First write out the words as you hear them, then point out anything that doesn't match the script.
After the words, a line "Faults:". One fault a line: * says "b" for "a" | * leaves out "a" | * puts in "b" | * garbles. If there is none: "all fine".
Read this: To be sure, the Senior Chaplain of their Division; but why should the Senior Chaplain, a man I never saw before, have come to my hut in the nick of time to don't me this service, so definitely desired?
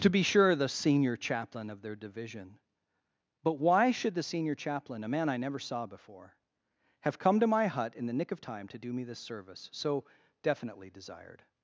To be sure, the Senior Chaplain of their Division; but why should the Senior Chaplain, a man I never saw before, have come to my hut in the nick of time to do me this service, so definitely desired?
Faults:
* says "do" for "don't"